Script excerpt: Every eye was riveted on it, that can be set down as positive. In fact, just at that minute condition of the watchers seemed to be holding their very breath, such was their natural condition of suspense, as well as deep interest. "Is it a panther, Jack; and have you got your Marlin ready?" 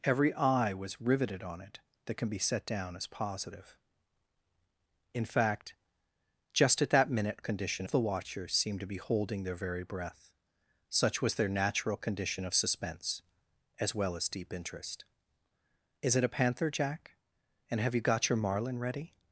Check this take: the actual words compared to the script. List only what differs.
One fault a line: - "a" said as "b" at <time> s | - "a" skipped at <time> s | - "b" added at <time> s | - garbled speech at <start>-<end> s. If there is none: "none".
none